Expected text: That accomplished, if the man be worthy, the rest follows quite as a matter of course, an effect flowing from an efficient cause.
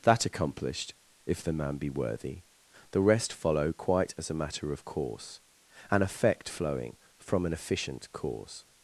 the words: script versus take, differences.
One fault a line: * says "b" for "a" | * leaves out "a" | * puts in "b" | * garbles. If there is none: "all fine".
* says "follow" for "follows"